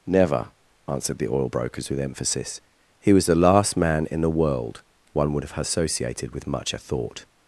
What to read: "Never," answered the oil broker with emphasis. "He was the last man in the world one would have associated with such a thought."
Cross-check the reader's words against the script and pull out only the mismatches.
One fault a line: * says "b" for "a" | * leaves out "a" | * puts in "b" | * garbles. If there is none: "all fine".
* says "brokers" for "broker"
* says "much" for "such"